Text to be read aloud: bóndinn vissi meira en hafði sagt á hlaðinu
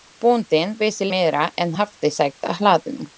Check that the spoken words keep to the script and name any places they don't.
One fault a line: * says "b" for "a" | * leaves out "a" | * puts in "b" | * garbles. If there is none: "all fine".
all fine